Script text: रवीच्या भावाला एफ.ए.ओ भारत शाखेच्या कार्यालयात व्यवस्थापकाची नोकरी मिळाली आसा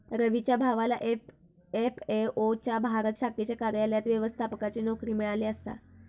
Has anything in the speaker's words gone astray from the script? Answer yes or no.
yes